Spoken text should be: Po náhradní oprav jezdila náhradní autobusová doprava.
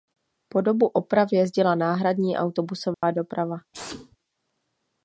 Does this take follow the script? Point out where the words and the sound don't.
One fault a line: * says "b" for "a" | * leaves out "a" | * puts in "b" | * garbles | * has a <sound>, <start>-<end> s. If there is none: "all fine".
* says "dobu" for "náhradní"
* has a dropout, 2.9-3.0 s
* has a sneeze, 3.7-4.2 s